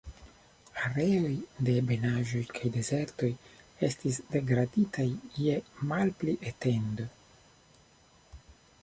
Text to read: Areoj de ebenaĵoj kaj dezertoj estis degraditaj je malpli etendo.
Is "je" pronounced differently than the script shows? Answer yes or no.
no